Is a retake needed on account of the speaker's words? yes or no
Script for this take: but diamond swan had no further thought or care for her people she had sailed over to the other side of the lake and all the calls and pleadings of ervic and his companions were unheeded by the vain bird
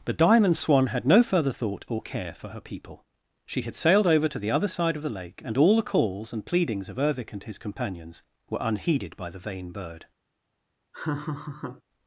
no